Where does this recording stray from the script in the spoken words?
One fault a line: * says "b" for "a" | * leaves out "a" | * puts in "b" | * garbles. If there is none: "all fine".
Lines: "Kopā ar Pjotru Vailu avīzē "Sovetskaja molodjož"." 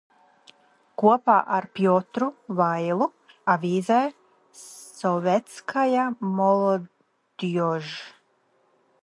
all fine